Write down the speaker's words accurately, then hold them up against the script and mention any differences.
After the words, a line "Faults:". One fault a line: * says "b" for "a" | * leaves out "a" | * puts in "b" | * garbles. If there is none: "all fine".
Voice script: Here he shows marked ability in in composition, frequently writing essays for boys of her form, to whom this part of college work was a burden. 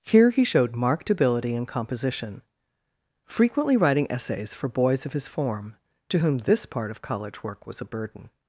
Here he showed marked ability in composition, frequently writing essays for boys of his form, to whom this part of college work was a burden.
Faults:
* says "showed" for "shows"
* leaves out "in"
* says "his" for "her"